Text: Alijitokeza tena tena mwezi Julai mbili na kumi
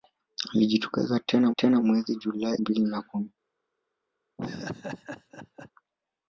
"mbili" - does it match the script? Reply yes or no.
yes